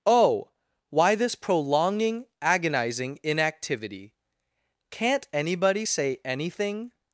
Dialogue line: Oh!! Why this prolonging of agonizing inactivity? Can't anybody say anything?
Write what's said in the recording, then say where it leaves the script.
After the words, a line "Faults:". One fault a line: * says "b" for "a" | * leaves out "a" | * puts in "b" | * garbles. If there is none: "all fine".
Oh!! Why this prolonging agonizing inactivity? Can't anybody say anything?
Faults:
* leaves out "of"